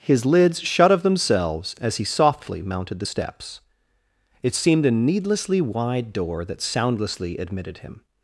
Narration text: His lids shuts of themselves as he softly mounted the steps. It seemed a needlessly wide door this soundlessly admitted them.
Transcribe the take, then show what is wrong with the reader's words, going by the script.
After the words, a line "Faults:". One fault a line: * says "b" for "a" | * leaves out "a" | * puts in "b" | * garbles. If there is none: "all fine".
His lids shut of themselves as he softly mounted the steps. It seemed a needlessly wide door that soundlessly admitted him.
Faults:
* says "shut" for "shuts"
* says "that" for "this"
* says "him" for "them"